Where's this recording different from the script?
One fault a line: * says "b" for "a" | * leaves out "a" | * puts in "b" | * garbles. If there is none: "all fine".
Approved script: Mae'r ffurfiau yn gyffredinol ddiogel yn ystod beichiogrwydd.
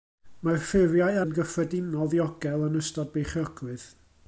all fine